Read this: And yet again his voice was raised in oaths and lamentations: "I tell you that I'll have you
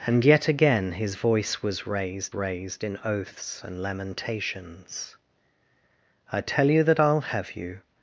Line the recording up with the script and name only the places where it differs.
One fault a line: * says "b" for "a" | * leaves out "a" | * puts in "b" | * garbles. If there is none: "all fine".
* puts in "raised"